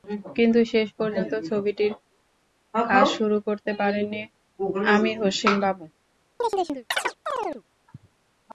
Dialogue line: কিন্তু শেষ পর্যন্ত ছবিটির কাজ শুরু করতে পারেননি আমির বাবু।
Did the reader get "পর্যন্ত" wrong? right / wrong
right